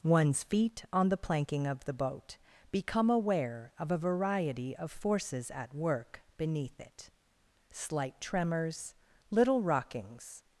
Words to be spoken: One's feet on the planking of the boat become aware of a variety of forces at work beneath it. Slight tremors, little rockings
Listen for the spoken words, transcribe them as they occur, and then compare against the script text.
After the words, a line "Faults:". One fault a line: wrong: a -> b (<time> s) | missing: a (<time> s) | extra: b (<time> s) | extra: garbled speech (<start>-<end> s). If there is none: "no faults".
One's feet on the planking of the boat become aware of a variety of forces at work beneath it. Slight tremors, little rockings
Faults:
no faults